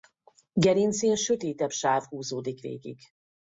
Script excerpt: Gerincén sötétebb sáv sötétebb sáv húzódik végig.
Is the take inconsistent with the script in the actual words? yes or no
yes